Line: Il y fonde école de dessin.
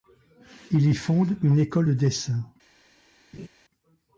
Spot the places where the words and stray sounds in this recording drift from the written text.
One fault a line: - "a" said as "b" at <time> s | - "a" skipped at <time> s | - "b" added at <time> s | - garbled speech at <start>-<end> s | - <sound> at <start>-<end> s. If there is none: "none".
- "une" added at 1.4 s
- laugh at 3.3-3.5 s